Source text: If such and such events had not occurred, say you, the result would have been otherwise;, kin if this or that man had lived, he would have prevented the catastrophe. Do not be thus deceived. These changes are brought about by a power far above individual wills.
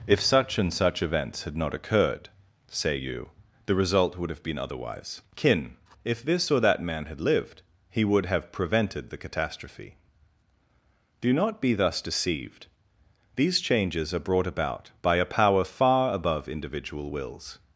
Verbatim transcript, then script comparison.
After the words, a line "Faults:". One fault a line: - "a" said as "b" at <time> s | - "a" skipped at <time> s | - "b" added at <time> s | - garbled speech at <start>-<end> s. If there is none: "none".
If such and such events had not occurred, say you, the result would have been otherwise;, kin if this or that man had lived, he would have prevented the catastrophe. Do not be thus deceived. These changes are brought about by a power far above individual wills.
Faults:
none